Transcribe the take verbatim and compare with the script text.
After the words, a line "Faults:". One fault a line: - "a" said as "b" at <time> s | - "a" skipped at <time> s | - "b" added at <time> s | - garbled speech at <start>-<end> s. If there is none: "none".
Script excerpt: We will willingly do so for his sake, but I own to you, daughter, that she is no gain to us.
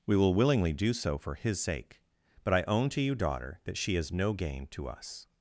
We will willingly do so for his sake, but I own to you, daughter, that she is no gain to us.
Faults:
none